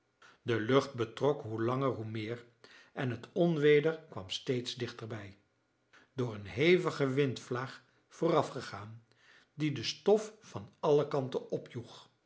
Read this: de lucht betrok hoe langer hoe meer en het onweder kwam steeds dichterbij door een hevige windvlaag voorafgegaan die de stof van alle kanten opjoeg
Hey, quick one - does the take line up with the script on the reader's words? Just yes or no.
yes